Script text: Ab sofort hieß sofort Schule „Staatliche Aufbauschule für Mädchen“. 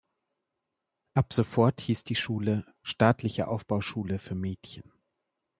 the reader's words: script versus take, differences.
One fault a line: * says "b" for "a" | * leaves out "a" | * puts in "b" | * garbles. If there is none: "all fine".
* says "die" for "sofort"